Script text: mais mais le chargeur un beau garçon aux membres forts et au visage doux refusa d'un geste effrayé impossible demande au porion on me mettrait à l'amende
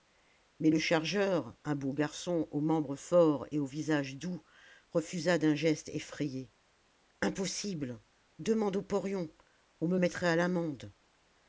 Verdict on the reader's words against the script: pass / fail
fail